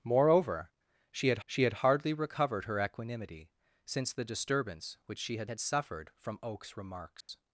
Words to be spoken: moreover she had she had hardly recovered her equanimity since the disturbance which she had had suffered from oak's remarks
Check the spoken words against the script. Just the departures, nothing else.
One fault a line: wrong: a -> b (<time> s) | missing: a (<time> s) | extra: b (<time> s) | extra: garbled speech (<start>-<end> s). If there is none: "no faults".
no faults